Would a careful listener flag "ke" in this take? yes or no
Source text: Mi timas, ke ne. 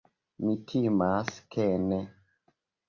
no